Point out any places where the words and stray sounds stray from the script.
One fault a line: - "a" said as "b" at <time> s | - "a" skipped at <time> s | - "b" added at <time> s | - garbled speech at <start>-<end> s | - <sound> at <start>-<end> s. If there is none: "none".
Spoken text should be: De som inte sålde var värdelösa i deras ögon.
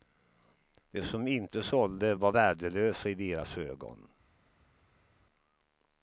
none